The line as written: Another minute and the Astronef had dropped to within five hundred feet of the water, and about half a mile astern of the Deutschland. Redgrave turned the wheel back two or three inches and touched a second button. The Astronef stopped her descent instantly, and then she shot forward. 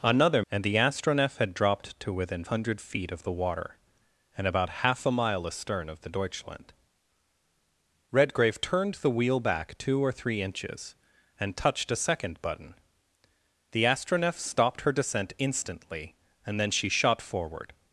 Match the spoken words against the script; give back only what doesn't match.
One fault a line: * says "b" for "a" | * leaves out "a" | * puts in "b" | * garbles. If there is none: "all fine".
* leaves out "minute"
* leaves out "five"